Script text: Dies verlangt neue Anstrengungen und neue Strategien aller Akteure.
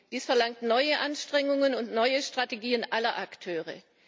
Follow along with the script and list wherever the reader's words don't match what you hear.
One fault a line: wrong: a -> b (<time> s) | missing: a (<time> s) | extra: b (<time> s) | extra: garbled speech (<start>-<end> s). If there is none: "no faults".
no faults